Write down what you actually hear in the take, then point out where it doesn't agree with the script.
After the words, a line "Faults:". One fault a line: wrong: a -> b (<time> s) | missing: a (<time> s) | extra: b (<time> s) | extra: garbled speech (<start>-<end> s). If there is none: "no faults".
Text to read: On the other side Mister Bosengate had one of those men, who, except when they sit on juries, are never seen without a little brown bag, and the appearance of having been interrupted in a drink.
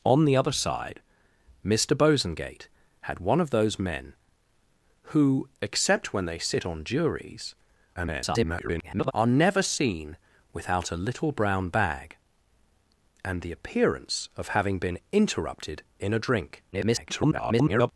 On the other side Mister Bosengate had one of those men, who, except when they sit on juries, [garbled] are never seen without a little brown bag, and the appearance of having been interrupted in a drink. [garbled]
Faults:
extra: garbled speech (8.0-9.1 s)
extra: garbled speech (16.7-17.9 s)